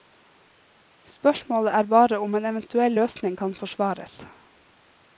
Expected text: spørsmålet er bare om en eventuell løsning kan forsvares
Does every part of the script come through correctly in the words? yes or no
yes